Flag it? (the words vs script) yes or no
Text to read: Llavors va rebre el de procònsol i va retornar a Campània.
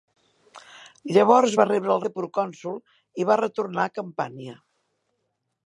no